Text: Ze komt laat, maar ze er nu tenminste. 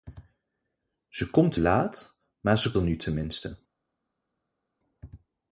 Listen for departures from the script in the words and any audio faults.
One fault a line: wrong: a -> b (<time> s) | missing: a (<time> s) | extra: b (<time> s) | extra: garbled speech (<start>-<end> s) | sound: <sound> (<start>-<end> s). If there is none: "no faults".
no faults